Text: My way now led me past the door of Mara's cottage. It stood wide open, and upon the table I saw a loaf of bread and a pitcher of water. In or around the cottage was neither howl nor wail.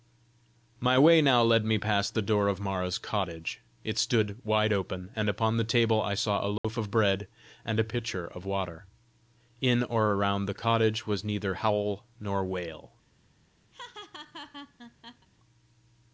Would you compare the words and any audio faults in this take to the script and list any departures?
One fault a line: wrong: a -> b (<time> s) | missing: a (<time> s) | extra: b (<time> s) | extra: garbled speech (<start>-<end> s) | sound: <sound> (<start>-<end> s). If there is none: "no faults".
sound: dropout (6.6-6.6 s)
sound: laugh (13.7-15.3 s)